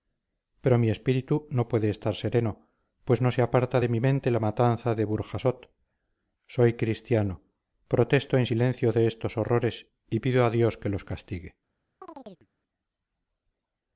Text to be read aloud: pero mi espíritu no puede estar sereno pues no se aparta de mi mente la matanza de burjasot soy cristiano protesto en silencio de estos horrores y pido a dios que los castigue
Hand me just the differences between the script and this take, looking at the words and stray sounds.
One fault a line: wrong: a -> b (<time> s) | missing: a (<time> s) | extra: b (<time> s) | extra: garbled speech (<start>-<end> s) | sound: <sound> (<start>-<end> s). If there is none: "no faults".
sound: chirp (12.0-12.5 s)